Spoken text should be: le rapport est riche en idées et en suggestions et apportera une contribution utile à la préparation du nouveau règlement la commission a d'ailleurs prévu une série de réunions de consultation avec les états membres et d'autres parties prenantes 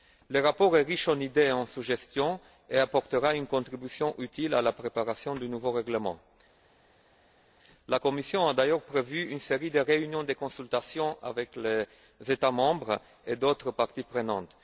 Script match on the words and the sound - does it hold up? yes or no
yes